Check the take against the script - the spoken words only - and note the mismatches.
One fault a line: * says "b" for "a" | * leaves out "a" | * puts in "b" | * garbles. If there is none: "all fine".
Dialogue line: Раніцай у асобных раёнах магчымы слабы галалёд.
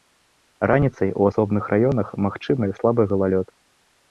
all fine